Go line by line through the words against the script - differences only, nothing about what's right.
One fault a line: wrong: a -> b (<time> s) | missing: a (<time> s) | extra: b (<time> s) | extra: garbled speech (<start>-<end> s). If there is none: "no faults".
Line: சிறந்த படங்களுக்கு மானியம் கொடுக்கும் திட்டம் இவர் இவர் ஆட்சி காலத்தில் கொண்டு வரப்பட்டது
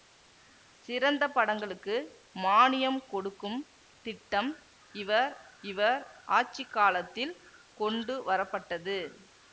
no faults